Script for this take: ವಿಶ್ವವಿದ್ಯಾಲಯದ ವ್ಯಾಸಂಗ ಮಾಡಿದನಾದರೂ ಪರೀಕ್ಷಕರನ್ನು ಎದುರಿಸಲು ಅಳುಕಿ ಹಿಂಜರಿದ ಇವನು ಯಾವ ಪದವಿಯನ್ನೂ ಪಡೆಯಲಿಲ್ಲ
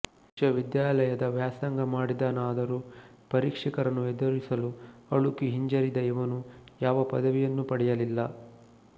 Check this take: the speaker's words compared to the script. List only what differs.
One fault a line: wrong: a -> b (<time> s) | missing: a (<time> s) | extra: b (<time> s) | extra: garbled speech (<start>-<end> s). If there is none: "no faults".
no faults